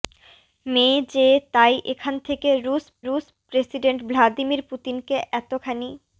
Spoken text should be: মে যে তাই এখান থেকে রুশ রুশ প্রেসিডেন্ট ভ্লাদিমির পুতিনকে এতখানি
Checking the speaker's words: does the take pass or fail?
pass